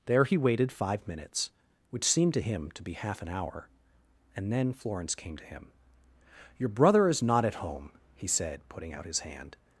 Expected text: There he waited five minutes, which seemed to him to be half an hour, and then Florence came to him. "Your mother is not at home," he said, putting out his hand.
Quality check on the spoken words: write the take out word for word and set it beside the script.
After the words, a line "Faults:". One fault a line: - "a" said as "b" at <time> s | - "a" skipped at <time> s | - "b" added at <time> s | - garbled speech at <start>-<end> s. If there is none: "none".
There he waited five minutes, which seemed to him to be half an hour, and then Florence came to him. "Your brother is not at home," he said, putting out his hand.
Faults:
- "mother" said as "brother" at 6.7 s